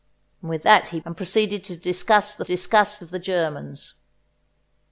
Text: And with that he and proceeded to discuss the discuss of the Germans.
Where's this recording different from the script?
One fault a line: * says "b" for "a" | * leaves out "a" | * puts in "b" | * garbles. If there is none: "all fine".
all fine